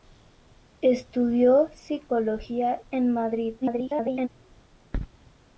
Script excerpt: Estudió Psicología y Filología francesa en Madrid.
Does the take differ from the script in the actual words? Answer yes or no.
yes